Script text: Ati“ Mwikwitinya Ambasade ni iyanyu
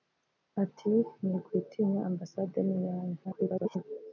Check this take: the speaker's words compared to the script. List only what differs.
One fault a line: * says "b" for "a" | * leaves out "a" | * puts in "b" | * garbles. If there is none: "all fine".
* garbles